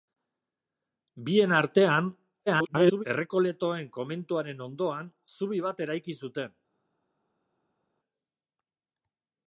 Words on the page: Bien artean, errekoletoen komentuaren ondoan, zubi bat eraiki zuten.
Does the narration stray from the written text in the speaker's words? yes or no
yes